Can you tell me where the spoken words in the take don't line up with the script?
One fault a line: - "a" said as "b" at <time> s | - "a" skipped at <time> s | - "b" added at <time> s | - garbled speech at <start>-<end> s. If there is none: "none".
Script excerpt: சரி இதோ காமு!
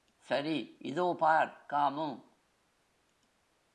- "பார்" added at 1.2 s